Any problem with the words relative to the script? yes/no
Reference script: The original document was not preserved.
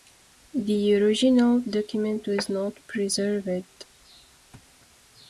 no